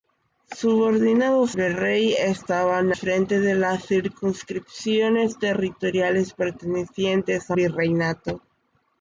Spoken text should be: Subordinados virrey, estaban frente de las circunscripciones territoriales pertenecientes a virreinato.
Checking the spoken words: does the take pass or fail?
pass